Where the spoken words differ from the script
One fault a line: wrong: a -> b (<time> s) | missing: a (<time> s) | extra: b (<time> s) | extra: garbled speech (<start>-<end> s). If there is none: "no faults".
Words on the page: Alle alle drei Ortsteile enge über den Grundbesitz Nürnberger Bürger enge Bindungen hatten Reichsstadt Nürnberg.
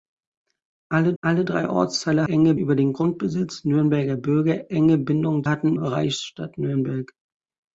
no faults